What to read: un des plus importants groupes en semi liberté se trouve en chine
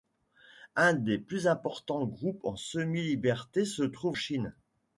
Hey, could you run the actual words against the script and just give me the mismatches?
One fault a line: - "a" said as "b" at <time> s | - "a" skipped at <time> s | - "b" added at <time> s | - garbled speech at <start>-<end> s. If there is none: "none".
- "en" skipped at 4.2 s